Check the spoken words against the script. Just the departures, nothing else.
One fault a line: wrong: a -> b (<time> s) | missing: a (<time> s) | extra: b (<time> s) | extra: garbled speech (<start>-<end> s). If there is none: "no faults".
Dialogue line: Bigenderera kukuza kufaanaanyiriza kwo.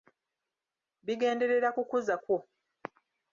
missing: kufaanaanyiriza (2.1 s)